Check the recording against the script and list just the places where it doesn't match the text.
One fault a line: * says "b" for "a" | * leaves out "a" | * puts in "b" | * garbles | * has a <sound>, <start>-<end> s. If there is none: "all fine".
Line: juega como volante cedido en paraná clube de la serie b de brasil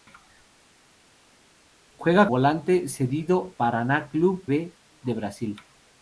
* leaves out "como"
* leaves out "en"
* leaves out "de la serie"